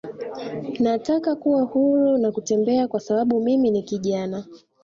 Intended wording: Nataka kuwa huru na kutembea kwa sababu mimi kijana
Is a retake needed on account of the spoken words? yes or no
yes